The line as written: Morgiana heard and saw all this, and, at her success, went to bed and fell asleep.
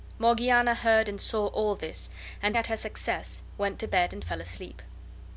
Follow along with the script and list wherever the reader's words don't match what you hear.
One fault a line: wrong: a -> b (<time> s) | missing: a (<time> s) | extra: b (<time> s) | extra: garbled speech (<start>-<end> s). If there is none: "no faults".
no faults